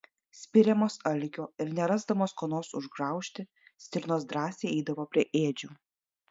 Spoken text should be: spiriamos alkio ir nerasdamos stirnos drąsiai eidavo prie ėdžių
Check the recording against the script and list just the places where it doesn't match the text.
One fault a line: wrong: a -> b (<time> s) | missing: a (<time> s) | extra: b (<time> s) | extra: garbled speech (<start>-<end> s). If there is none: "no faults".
extra: ko nors užgraužti (2.4 s)